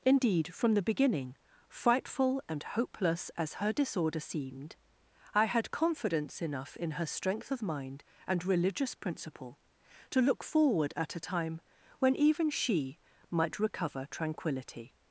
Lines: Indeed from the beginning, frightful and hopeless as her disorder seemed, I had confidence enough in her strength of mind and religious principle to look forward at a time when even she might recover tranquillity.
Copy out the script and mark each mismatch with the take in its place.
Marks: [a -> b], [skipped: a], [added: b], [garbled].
Indeed from the beginning, frightful and hopeless as her disorder seemed, I had confidence enough in her strength of mind and religious principle to look forward at a time when even she might recover tranquillity.